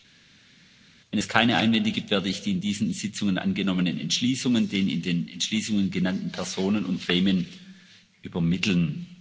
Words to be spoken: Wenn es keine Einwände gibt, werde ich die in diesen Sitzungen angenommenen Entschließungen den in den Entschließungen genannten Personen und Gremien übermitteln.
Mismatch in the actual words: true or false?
false